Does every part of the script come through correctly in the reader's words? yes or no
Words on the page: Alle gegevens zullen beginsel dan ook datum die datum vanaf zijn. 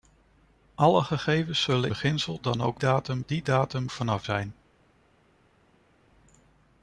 yes